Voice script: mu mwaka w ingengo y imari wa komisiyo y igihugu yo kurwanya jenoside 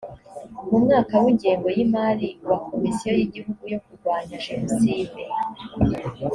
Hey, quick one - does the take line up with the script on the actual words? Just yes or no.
yes